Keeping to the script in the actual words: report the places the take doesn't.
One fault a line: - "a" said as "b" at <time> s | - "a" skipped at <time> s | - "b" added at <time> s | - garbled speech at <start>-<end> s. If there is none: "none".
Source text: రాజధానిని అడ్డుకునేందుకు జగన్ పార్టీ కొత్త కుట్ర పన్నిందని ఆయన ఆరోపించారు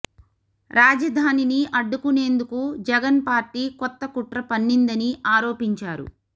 - "ఆయన" skipped at 5.1 s